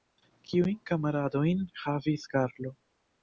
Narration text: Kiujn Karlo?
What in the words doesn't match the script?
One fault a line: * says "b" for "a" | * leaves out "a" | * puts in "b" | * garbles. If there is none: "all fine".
* puts in "kamaradojn havis"